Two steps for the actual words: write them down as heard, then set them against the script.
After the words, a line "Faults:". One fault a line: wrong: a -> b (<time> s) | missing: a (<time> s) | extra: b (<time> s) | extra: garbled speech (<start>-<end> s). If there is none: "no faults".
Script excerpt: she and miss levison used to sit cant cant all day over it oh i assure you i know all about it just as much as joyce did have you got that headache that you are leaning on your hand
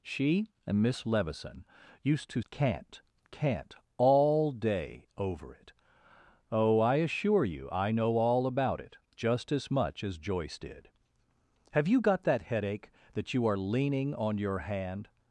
she and miss levison used to cant cant all day over it oh i assure you i know all about it just as much as joyce did have you got that headache that you are leaning on your hand
Faults:
missing: sit (2.4 s)